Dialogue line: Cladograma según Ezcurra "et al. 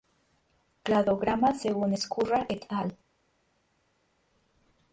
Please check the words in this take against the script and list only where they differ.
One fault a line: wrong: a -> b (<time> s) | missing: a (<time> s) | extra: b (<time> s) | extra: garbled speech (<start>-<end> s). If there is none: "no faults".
no faults